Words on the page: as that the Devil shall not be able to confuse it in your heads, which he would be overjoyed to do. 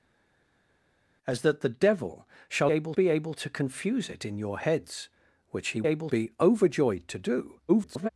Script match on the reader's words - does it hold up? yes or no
no